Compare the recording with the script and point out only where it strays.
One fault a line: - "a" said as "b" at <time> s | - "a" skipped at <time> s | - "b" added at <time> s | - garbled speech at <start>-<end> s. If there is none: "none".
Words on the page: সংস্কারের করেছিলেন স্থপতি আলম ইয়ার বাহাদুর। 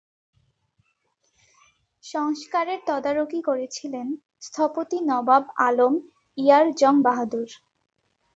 - "তদারকি" added at 2.9 s
- "নবাব" added at 5.0 s
- "জং" added at 6.7 s